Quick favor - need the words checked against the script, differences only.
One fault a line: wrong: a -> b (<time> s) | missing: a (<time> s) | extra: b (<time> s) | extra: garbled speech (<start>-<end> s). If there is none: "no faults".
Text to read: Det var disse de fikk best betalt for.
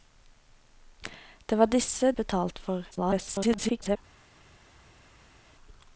missing: de fikk best (2.1 s)
extra: garbled speech (2.9-4.0 s)